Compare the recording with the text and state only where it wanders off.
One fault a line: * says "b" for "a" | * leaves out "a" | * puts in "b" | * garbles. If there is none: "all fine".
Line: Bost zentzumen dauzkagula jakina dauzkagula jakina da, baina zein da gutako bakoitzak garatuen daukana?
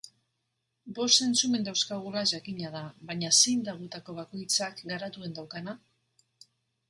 * leaves out "dauzkagula jakina"